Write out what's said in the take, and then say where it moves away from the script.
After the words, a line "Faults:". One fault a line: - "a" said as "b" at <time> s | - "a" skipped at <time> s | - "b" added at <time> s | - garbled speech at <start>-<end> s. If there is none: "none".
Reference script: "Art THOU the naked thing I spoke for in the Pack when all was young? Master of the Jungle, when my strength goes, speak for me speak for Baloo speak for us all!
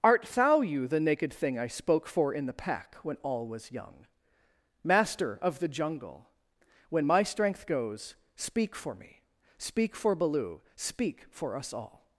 "Art THOU you the naked thing I spoke for in the Pack when all was young? Master of the Jungle, when my strength goes, speak for me speak for Baloo speak for us all!
Faults:
- "you" added at 0.6 s